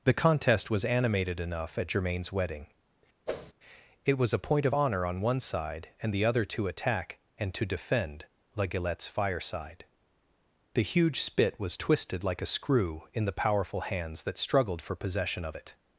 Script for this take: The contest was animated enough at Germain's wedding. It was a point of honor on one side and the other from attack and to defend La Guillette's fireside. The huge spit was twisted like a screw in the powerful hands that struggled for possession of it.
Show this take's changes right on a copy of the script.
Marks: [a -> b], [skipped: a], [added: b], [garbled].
The contest was animated enough at Germain's wedding. It was a point of honor on one side and the other [from -> to] attack and to defend La Guillette's fireside. The huge spit was twisted like a screw in the powerful hands that struggled for possession of it.